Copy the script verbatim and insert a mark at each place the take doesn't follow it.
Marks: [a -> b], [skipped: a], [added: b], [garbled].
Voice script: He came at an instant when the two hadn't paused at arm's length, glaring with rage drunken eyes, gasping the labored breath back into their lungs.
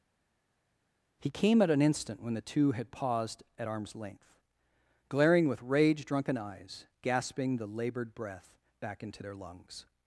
He came at an instant when the two [hadn't -> had] paused at arm's length, glaring with rage drunken eyes, gasping the labored breath back into their lungs.